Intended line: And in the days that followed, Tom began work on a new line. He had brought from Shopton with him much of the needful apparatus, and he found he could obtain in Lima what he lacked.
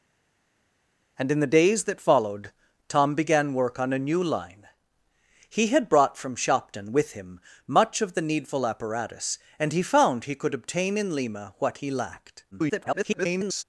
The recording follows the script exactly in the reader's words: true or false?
false